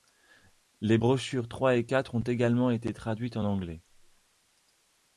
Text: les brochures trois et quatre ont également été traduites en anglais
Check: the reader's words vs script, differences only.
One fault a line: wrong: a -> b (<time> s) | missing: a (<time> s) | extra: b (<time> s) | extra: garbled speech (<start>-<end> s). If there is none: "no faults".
no faults